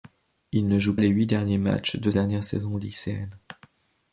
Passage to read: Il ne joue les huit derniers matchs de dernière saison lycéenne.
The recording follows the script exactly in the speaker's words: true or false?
true